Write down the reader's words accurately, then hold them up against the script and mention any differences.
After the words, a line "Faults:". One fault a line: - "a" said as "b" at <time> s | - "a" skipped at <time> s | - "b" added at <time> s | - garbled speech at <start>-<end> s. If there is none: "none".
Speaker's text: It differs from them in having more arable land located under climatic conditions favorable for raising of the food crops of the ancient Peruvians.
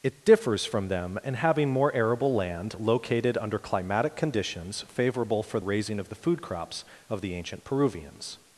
It differs from them in having more arable land located under climatic conditions favorable for raising of the food crops of the ancient Peruvians.
Faults:
none